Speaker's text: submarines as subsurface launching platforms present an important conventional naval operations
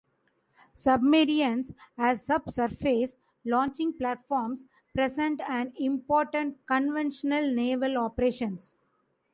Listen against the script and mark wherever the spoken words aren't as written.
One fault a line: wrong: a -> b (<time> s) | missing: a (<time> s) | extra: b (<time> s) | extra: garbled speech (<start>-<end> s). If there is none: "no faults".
no faults